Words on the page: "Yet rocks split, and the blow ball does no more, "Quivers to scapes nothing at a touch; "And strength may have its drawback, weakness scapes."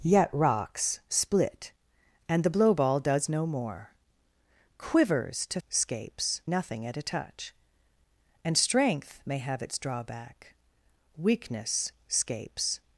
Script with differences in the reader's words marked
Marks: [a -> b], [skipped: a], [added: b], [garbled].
"Yet rocks split, and the blow ball does no more, "Quivers to scapes nothing at a touch; "And strength may have its drawback, weakness scapes."